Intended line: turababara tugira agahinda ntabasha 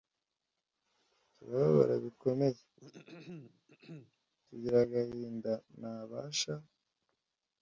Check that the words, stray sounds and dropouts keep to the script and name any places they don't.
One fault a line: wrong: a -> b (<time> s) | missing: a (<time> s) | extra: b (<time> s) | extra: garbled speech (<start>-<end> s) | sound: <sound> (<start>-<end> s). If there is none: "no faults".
extra: bikomeye (2.0 s)
sound: throat clearing (2.8-4.2 s)